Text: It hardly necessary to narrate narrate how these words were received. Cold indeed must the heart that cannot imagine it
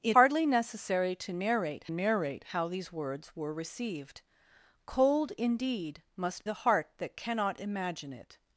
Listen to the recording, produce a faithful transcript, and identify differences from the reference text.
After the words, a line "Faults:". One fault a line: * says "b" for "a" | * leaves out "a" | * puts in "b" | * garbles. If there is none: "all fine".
It hardly necessary to narrate narrate how these words were received. Cold indeed must the heart that cannot imagine it
Faults:
all fine